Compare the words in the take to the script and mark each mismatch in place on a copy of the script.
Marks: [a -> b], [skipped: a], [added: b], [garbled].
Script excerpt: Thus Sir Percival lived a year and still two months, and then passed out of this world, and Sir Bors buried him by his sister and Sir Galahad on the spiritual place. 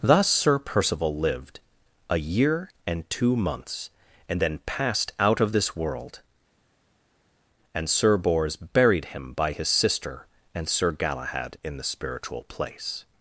Thus Sir Percival lived a year and [skipped: still] two months, and then passed out of this world, and Sir Bors buried him by his sister and Sir Galahad [on -> in] the spiritual place.